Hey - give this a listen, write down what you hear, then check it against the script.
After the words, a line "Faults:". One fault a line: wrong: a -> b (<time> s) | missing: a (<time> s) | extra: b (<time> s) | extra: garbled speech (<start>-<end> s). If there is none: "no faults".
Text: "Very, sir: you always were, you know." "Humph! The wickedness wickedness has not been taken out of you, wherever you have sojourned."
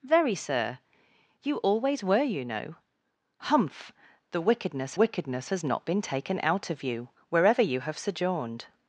"Very, sir: you always were, you know." "Humph! The wickedness wickedness has not been taken out of you, wherever you have sojourned."
Faults:
no faults